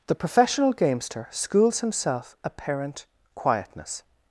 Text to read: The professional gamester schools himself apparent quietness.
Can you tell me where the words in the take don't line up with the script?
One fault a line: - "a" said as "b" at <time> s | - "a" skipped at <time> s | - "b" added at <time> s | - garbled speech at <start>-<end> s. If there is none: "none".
none